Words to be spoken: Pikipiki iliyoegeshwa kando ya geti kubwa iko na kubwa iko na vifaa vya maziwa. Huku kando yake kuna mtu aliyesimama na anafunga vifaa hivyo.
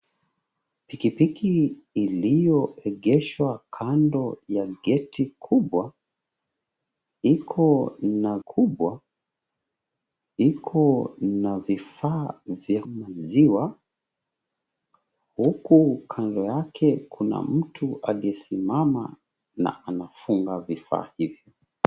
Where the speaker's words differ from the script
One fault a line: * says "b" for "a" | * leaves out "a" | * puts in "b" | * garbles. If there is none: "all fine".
all fine